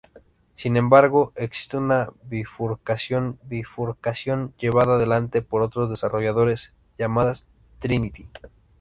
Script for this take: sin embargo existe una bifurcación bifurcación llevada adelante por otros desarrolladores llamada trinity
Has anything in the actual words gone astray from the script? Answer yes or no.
no